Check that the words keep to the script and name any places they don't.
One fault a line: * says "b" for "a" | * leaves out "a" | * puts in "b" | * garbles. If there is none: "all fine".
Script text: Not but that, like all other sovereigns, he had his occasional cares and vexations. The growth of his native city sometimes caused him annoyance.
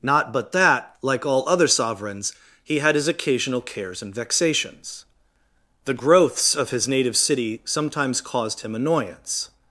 * says "growths" for "growth"